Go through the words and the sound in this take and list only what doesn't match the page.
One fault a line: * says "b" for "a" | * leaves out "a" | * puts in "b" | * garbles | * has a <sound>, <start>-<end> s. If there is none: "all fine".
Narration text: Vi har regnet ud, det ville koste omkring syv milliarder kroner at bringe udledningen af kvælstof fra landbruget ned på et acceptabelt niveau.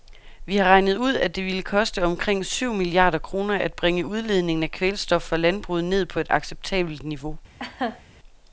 * puts in "at"
* has a laugh, 7.6-8.0 s